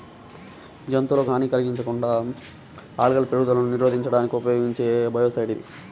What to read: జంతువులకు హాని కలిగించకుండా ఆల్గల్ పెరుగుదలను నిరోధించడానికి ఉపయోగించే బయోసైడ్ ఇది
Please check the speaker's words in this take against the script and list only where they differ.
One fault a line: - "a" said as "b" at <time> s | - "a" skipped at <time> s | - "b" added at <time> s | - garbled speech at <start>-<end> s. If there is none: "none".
none